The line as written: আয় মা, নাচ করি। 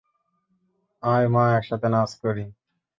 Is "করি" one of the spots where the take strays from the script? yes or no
no